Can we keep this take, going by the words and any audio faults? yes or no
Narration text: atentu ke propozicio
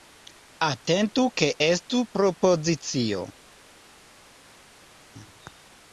no